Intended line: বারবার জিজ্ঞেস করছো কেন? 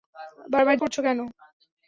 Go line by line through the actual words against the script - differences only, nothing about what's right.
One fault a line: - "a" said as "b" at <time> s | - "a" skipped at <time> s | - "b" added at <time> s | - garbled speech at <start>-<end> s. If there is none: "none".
- "জিজ্ঞেস" skipped at 0.8 s